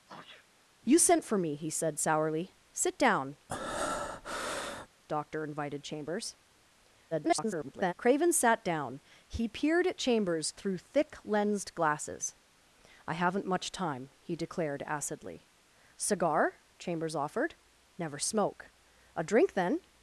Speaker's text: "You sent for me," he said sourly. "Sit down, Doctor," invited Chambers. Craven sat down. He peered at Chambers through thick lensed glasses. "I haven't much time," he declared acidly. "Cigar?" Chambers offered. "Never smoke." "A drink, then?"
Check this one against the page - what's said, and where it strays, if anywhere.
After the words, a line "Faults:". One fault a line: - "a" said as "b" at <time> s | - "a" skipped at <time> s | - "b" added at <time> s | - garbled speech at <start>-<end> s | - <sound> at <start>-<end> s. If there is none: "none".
"You sent for me," he said sourly. "Sit down, Doctor," invited Chambers. [garbled] Craven sat down. He peered at Chambers through thick lensed glasses. "I haven't much time," he declared acidly. "Cigar?" Chambers offered. "Never smoke." "A drink, then?"
Faults:
- sneeze at 0.1-0.5 s
- breath at 3.5-4.9 s
- garbled speech at 7.1-7.9 s